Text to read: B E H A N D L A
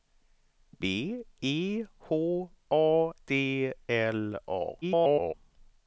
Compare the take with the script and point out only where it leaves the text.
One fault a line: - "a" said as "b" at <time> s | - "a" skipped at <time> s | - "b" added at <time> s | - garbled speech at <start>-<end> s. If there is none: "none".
- "N" skipped at 3.1 s
- garbled speech at 4.8-5.3 s